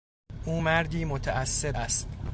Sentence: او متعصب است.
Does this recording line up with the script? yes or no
no